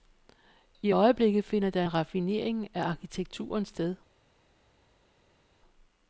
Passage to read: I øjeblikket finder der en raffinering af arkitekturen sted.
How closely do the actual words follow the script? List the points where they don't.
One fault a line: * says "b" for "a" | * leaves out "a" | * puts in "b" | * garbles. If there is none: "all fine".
all fine